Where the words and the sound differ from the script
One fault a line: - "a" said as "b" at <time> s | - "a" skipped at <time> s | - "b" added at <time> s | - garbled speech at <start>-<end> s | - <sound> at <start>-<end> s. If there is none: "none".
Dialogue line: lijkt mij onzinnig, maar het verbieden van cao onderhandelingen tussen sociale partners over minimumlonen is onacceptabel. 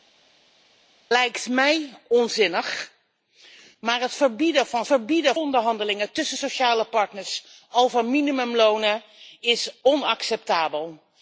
- "cao" said as "verbieden" at 4.8 s